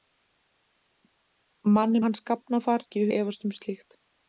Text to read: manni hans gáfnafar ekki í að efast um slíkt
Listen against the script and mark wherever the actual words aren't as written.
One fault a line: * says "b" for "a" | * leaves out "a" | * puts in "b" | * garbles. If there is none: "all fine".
all fine